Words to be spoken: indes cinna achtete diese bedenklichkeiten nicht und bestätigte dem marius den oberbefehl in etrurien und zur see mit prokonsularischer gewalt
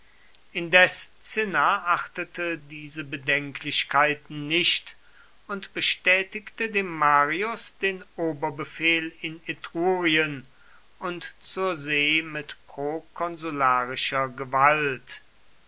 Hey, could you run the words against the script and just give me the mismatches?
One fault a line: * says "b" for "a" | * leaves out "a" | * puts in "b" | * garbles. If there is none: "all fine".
all fine